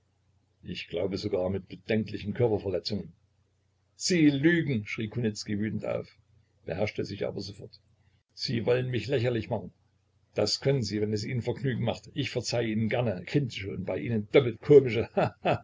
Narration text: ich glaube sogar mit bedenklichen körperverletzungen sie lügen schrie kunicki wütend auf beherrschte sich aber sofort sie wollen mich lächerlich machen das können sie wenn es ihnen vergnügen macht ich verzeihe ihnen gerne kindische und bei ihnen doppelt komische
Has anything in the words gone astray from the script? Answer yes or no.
no